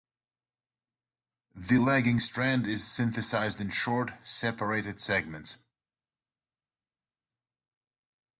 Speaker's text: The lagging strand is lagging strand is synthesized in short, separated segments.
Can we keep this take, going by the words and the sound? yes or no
no